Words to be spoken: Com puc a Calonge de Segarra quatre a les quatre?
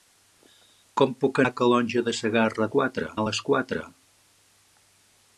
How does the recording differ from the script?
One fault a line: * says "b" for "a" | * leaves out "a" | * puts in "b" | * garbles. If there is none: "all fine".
all fine